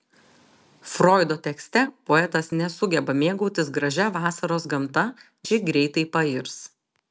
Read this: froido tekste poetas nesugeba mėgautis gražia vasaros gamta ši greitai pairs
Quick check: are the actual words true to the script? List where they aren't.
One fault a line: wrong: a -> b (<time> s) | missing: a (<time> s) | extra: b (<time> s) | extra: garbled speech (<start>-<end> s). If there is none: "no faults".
no faults